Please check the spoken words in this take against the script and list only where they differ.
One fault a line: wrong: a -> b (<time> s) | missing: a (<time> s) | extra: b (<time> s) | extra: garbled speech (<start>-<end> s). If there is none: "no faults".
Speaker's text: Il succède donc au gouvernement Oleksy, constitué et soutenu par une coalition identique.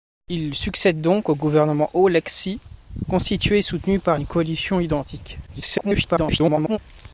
extra: garbled speech (5.5-6.8 s)